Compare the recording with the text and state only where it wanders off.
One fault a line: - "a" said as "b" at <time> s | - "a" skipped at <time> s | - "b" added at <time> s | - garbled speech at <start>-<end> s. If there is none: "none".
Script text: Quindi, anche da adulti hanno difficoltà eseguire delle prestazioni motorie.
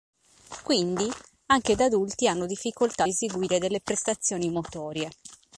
none